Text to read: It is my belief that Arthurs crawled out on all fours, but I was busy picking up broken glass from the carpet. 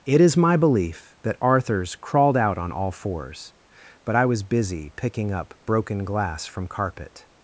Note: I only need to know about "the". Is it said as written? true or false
false